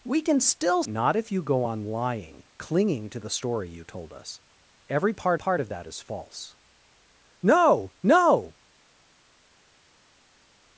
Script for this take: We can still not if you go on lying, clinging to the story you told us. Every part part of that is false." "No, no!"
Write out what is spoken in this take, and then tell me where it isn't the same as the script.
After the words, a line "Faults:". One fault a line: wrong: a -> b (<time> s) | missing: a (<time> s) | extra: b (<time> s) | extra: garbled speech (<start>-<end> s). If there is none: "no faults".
We can still not if you go on lying, clinging to the story you told us. Every part part of that is false." "No, no!"
Faults:
no faults